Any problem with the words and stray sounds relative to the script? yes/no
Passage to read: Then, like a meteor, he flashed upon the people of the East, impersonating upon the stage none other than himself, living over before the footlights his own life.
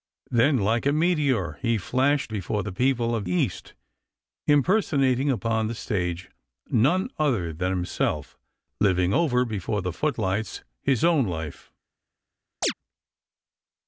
yes